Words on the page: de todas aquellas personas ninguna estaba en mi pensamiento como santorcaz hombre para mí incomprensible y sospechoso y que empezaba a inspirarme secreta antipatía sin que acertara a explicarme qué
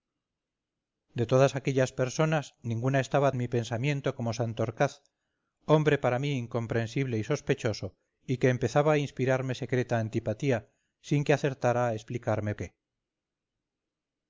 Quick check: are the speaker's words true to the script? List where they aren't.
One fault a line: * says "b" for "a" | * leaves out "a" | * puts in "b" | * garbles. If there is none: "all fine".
all fine